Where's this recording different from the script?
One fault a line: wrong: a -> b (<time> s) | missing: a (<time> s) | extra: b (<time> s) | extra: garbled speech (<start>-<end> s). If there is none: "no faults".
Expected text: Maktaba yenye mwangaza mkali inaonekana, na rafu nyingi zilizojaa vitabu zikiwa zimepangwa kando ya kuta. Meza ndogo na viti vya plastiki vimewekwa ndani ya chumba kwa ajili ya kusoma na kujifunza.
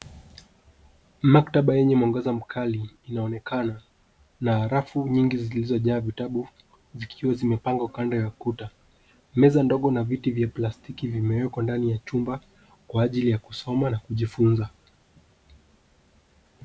no faults